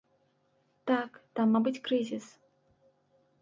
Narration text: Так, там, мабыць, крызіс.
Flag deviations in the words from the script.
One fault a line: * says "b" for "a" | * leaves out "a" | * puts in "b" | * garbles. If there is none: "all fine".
all fine